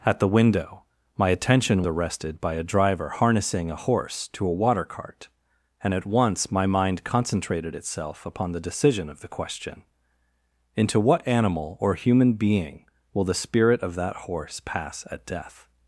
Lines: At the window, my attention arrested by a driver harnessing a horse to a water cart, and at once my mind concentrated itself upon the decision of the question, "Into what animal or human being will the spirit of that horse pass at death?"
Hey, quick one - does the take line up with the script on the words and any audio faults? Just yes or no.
yes